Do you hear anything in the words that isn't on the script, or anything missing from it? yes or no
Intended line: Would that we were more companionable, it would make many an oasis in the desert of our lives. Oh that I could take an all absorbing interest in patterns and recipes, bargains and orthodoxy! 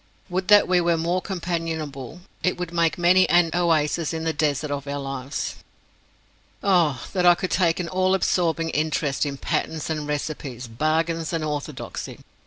no